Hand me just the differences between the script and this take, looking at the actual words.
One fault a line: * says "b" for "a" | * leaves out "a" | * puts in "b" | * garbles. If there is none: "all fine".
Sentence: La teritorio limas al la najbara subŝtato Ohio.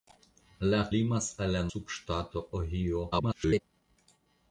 * leaves out "teritorio"
* leaves out "najbara"
* garbles